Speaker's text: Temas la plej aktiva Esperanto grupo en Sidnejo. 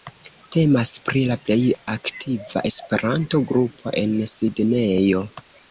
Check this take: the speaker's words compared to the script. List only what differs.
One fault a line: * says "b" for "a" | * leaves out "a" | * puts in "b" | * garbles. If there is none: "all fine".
* puts in "pri"